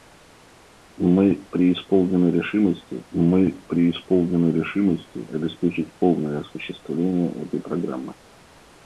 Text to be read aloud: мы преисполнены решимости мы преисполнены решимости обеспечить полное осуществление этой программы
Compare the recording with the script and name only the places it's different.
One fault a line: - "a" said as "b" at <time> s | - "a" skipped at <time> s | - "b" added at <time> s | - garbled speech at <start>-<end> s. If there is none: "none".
none